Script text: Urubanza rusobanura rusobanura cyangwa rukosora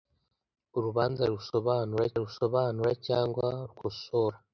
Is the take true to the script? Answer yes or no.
yes